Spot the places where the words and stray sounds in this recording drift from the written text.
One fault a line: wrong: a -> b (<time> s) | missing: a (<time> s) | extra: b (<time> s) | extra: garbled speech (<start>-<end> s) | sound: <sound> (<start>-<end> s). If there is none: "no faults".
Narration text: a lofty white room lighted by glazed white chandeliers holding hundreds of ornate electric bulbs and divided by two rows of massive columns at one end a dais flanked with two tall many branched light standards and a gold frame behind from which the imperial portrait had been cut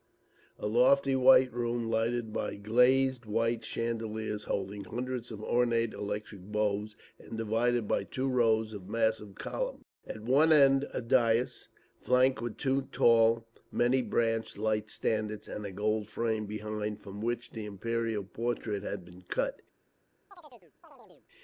sound: chirp (20.3-21.3 s)